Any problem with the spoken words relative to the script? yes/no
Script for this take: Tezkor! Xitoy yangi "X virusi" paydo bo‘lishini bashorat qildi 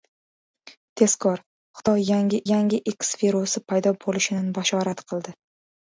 yes